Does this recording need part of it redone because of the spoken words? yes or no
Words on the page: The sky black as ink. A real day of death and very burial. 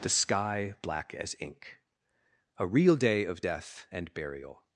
yes